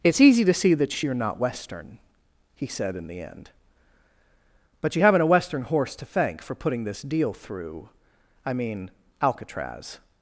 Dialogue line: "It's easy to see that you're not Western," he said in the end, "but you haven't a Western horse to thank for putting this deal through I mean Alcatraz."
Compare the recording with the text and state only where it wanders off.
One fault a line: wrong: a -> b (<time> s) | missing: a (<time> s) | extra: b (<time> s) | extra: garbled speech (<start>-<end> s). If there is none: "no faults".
no faults